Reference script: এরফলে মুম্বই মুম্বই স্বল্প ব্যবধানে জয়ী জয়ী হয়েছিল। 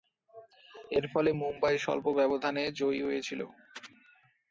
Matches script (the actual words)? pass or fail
fail